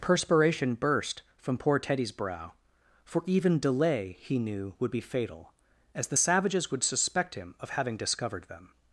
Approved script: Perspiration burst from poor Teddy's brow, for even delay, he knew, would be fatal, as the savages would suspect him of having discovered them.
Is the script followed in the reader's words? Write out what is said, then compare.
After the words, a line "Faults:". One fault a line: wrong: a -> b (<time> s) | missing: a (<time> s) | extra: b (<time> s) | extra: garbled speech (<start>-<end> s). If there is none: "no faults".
Perspiration burst from poor Teddy's brow, for even delay, he knew, would be fatal, as the savages would suspect him of having discovered them.
Faults:
no faults